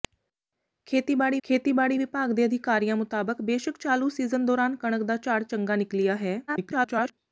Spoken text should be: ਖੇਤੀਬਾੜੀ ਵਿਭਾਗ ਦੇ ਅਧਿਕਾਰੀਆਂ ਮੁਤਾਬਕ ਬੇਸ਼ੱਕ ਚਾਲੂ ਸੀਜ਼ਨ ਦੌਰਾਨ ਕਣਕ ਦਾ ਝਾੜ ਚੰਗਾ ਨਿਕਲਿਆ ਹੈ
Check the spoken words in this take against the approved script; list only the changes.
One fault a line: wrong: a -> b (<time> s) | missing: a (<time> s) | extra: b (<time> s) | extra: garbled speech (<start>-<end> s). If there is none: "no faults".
extra: ਖੇਤੀਬਾੜੀ (1.4 s)
extra: garbled speech (6.5-7.1 s)